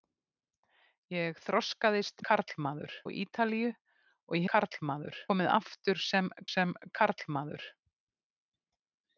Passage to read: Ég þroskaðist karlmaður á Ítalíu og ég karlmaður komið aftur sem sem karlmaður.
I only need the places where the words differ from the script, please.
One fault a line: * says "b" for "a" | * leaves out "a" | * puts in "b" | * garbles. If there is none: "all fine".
all fine